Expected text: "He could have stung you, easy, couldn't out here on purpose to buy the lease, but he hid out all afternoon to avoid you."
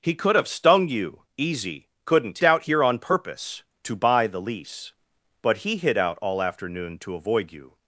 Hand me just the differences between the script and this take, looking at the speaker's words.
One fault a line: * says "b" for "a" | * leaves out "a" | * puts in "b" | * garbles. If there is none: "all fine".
all fine